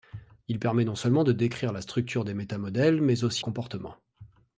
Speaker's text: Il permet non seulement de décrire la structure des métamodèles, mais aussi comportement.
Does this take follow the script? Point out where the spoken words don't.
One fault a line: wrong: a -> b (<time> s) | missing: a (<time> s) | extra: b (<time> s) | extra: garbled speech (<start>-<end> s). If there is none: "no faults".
no faults